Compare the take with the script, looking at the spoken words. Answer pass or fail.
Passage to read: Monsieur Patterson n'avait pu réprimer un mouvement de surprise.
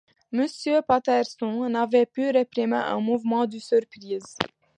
pass